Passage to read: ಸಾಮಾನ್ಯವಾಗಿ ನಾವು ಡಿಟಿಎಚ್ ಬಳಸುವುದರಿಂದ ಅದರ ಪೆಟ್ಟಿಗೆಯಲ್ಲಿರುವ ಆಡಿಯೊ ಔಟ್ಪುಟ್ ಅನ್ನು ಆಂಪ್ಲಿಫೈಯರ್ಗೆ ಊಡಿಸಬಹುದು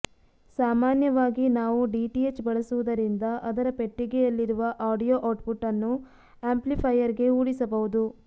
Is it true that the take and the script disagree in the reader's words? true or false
false